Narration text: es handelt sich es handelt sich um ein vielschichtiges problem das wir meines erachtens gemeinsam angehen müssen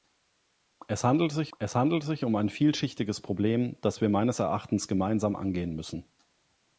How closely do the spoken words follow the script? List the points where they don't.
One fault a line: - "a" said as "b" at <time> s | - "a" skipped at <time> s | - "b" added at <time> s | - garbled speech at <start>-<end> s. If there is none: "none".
none